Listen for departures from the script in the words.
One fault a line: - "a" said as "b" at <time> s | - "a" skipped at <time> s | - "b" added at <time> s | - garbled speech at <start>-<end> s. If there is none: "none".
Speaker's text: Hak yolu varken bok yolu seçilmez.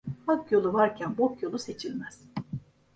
none